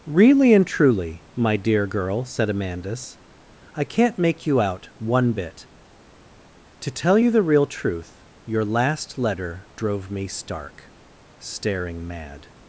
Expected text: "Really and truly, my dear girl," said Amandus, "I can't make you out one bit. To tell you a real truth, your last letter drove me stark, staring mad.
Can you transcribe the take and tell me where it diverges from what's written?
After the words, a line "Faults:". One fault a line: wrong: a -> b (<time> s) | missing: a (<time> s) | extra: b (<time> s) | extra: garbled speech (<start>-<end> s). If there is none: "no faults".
"Really and truly, my dear girl," said Amandus, "I can't make you out one bit. To tell you the real truth, your last letter drove me stark, staring mad.
Faults:
wrong: a -> the (7.3 s)